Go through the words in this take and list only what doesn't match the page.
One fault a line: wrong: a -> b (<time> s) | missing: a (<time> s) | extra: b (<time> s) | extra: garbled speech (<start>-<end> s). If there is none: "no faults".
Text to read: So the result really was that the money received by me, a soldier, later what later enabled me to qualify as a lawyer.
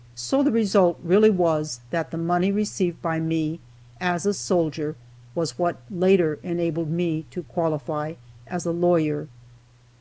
extra: as (4.0 s)
wrong: later -> was (5.3 s)